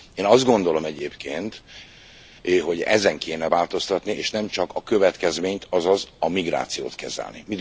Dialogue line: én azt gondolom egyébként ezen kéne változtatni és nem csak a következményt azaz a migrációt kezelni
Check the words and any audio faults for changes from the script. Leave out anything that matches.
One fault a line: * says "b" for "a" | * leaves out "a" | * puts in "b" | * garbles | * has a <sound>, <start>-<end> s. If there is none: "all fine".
* puts in "hogy"